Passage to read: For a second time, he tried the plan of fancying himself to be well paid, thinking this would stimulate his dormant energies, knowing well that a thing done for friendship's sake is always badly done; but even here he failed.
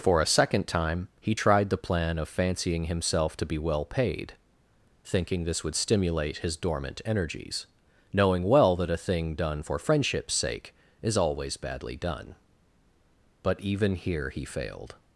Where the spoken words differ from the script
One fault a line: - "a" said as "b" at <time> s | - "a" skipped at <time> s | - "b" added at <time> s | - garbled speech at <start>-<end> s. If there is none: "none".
none